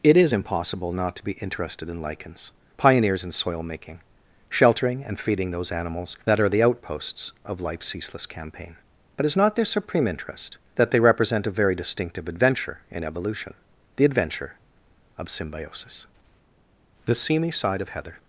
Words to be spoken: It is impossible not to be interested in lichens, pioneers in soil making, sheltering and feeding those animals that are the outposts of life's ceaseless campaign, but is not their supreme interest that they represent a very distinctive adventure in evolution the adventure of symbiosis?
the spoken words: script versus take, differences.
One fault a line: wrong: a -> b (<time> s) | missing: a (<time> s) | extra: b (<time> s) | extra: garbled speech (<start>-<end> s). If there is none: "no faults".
extra: The Seamy Side of Heather (17.1 s)